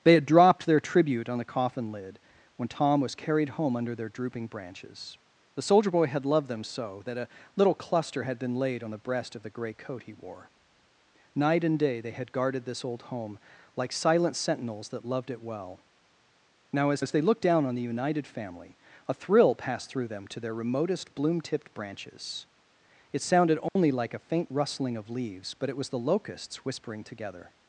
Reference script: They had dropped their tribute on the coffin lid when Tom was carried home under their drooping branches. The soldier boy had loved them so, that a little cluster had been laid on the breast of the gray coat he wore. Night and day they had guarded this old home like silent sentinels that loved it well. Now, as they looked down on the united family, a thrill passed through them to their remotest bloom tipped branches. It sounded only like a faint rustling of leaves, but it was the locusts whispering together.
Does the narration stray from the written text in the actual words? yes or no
yes